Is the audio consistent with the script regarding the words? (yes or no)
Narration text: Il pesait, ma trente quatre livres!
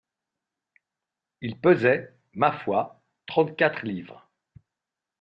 no